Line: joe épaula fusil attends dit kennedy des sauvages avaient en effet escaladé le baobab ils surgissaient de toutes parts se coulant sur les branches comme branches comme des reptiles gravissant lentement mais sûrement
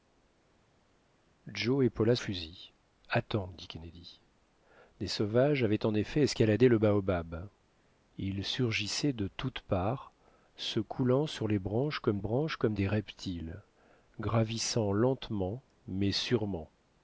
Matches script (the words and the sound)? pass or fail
pass